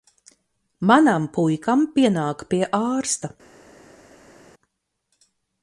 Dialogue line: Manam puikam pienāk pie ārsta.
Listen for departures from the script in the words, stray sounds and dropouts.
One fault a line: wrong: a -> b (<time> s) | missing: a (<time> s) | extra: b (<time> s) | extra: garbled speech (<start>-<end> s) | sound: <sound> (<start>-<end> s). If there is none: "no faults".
no faults